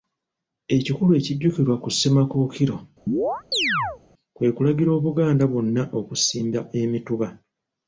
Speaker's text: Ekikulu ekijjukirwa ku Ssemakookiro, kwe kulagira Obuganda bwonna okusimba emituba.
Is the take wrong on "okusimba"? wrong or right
right